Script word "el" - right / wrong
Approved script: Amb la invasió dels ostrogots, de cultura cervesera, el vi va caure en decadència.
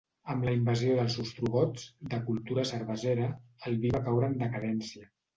right